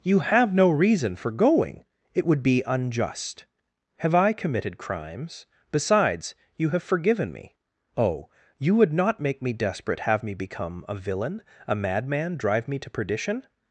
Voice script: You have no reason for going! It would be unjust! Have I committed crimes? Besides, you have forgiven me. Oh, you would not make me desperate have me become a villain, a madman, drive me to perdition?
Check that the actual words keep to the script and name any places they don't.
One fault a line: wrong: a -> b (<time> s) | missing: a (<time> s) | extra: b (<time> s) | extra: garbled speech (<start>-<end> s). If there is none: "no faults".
no faults